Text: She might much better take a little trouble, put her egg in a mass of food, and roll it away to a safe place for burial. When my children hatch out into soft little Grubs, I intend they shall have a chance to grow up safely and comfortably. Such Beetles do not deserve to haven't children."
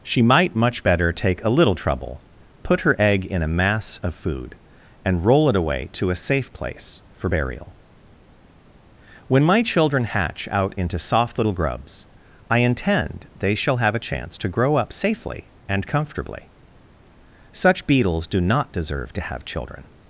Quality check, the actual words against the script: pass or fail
fail